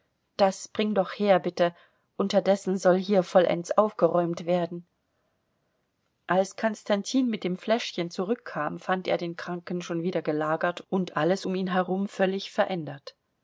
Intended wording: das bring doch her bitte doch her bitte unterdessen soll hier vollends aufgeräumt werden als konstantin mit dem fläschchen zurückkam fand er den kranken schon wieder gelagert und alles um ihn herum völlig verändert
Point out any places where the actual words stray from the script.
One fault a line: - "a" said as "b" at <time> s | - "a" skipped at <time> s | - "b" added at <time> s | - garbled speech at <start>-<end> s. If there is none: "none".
- "doch her bitte" skipped at 1.8 s